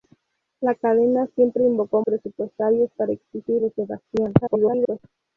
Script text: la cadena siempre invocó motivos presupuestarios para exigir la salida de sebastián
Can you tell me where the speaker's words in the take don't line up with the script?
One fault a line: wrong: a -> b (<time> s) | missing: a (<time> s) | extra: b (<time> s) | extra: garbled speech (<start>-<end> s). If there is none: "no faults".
missing: motivos (2.0 s)
missing: la salida (3.6 s)
extra: garbled speech (4.4-5.0 s)